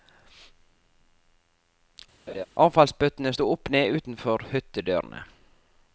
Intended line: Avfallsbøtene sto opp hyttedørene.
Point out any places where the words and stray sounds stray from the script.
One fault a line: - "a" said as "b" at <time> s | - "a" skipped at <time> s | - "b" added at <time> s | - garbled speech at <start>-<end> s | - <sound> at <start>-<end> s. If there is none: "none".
- laugh at 2.3-2.5 s
- "ned utenfor" added at 3.7 s